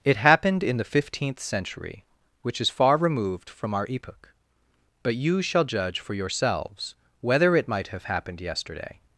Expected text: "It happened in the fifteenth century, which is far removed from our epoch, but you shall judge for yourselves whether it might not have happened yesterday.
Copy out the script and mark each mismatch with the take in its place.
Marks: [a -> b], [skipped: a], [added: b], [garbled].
"It happened in the fifteenth century, which is far removed from our epoch, but you shall judge for yourselves whether it might [skipped: not] have happened yesterday.